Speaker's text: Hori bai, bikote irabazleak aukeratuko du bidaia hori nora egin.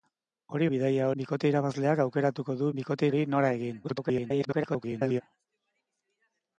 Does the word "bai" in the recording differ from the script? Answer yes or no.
yes